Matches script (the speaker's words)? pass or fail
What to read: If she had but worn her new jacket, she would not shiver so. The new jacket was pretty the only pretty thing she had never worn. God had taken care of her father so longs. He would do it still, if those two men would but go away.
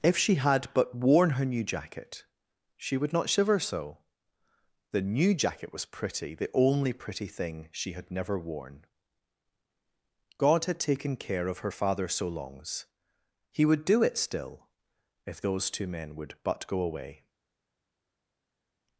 pass